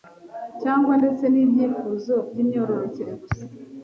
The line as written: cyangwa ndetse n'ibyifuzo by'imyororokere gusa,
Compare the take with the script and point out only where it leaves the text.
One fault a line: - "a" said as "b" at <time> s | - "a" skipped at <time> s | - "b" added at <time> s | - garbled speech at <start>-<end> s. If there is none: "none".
none